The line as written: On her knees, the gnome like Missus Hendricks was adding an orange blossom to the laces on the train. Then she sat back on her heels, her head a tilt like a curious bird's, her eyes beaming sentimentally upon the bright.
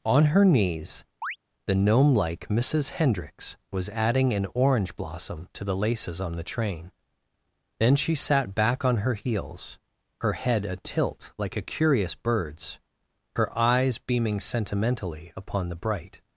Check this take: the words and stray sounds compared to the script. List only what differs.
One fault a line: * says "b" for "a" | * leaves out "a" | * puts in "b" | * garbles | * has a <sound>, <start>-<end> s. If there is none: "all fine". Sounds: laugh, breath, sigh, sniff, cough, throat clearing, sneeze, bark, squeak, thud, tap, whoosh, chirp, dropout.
* has a chirp, 1.2-1.4 s